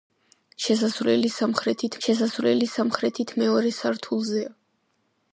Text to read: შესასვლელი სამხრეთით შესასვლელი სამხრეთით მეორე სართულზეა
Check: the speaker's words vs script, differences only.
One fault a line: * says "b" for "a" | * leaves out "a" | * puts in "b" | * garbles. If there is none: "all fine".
all fine